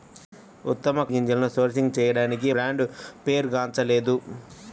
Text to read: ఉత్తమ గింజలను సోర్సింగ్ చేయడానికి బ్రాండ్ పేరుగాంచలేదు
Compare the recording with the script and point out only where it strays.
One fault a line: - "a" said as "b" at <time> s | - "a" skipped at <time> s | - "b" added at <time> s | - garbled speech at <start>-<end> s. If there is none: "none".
none